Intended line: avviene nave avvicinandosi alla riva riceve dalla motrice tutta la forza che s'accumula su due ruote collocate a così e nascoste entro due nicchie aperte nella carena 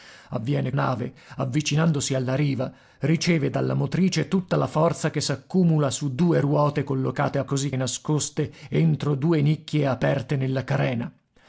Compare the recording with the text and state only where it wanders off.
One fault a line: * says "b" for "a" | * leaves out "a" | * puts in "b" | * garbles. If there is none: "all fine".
all fine